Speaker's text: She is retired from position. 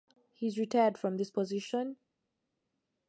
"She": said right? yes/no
no